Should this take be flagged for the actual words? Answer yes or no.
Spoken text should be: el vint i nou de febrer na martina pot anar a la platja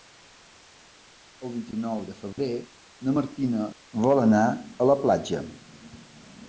yes